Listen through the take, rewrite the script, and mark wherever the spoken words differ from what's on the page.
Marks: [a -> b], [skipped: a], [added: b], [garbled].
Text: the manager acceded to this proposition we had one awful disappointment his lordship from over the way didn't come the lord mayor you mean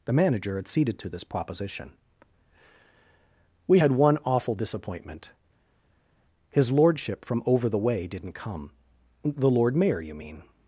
the manager acceded to this proposition we had one awful disappointment his lordship from over the way didn't come the lord mayor you mean